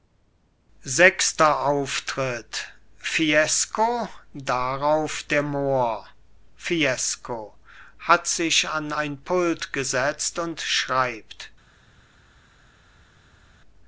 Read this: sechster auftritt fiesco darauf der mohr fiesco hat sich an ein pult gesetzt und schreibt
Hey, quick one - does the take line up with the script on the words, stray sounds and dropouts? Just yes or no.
yes